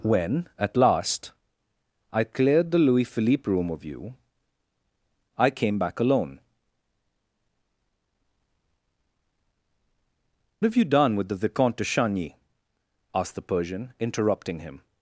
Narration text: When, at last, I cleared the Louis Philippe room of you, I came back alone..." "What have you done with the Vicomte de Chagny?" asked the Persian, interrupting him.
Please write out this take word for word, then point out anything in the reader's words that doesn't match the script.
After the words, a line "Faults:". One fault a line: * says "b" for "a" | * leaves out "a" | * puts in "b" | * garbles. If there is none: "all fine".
When, at last, I cleared the Louis Philippe room of you, I came back alone..." "Have you done with the Vicomte de Chagny?" asked the Persian, interrupting him.
Faults:
* leaves out "What"